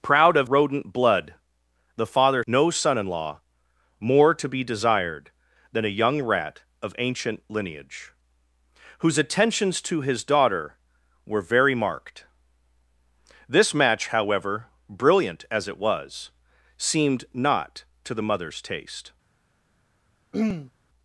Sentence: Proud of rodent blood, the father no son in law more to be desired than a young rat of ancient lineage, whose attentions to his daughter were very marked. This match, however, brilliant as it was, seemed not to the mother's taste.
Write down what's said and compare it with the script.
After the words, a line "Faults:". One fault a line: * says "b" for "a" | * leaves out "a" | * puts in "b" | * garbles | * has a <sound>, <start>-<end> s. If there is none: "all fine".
Proud of rodent blood, the father no son in law more to be desired than a young rat of ancient lineage, whose attentions to his daughter were very marked. This match, however, brilliant as it was, seemed not to the mother's taste.
Faults:
* has a throat clearing, 20.3-20.7 s